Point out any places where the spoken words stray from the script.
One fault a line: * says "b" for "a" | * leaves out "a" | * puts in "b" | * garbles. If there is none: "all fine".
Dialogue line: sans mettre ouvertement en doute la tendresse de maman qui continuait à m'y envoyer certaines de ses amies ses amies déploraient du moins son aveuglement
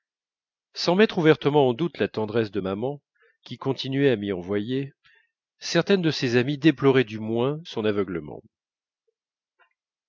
* leaves out "ses amies"